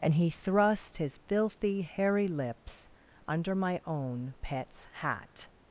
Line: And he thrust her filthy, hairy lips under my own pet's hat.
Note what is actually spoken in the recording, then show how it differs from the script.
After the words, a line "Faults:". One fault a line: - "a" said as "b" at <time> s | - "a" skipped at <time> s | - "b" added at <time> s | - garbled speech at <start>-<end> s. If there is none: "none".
And he thrust his filthy, hairy lips under my own pet's hat.
Faults:
- "her" said as "his" at 1.0 s